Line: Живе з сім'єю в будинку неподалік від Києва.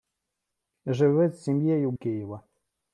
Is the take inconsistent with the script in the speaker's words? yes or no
yes